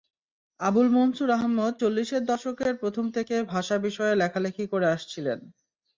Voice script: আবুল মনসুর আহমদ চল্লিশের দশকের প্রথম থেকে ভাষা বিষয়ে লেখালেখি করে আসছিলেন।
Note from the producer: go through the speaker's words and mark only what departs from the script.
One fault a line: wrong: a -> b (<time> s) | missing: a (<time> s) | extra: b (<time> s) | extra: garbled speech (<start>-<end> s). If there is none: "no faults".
no faults